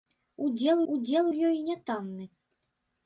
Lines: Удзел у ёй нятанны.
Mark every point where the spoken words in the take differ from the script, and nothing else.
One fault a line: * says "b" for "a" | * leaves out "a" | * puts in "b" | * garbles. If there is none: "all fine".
* puts in "удзел"